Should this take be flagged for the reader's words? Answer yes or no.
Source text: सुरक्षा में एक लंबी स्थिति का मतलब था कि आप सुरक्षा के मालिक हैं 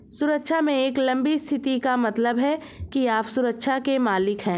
yes